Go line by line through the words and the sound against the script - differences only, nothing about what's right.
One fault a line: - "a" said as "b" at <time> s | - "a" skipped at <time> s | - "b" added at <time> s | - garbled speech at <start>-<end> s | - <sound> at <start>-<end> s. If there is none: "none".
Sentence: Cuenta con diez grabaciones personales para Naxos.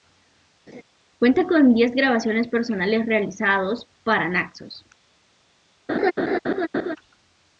- laugh at 0.7-0.8 s
- "realizados" added at 3.1 s
- laugh at 5.9-7.0 s